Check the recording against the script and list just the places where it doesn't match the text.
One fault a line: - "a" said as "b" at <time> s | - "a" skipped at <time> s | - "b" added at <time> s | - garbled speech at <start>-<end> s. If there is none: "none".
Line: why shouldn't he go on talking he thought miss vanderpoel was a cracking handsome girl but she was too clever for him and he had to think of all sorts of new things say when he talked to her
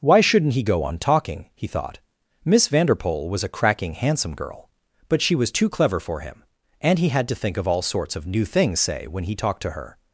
none